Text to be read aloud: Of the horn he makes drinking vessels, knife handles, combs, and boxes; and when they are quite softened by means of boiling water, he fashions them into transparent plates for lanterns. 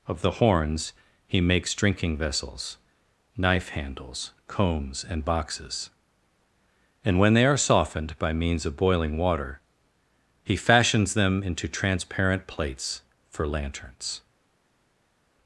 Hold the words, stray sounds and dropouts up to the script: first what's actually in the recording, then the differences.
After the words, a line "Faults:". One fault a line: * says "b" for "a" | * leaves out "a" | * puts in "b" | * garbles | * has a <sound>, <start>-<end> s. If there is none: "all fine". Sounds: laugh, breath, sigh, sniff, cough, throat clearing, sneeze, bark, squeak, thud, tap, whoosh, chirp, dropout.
Of the horns he makes drinking vessels, knife handles, combs, and boxes; and when they are softened by means of boiling water, he fashions them into transparent plates for lanterns.
Faults:
* says "horns" for "horn"
* leaves out "quite"